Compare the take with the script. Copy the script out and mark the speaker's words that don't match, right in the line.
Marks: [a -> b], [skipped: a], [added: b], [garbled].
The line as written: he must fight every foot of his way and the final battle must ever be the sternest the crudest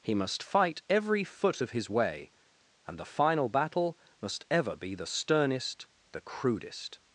he must fight every foot of his way and the final battle must ever be the sternest the crudest